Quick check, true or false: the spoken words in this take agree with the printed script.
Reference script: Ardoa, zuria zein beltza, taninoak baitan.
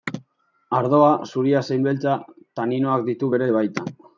false